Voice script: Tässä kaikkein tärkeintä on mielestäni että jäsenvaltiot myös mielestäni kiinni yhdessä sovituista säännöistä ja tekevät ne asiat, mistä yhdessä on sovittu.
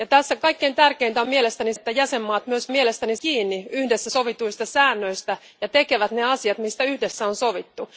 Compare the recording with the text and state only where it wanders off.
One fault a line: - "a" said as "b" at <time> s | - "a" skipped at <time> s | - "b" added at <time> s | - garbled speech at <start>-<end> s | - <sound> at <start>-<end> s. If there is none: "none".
none